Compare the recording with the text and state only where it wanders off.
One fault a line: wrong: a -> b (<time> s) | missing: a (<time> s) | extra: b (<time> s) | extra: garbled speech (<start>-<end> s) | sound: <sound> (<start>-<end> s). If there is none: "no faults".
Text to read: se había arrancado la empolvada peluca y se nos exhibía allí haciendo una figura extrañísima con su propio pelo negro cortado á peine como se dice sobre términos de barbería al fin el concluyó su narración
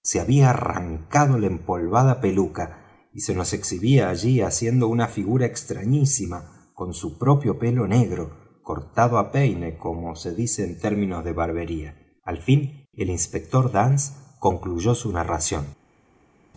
wrong: sobre -> en (10.6 s)
extra: inspector dance (13.1 s)